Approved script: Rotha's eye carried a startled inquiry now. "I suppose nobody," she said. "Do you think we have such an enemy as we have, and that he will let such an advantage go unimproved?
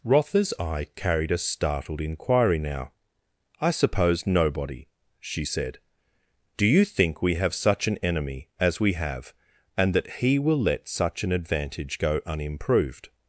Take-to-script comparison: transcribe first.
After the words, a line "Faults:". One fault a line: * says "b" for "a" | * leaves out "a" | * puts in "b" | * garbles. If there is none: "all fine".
Rotha's eye carried a startled inquiry now. "I suppose nobody," she said. "Do you think we have such an enemy as we have, and that he will let such an advantage go unimproved?
Faults:
all fine